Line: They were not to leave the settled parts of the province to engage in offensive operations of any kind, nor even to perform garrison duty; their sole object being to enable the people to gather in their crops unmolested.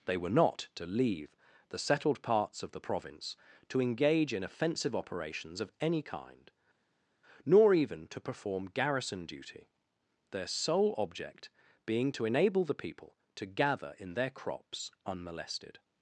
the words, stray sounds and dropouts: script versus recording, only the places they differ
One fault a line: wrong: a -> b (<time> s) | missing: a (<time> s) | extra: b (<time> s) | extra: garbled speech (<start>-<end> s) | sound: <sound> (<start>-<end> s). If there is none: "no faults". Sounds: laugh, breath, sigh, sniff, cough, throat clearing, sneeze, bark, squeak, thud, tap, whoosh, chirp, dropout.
no faults